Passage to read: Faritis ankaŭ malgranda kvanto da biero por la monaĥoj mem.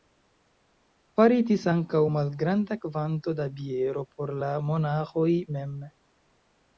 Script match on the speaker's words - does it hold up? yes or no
yes